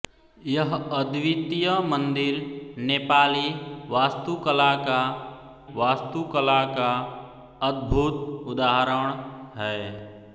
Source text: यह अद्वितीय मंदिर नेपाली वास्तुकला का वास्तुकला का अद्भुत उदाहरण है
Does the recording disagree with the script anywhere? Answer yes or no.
no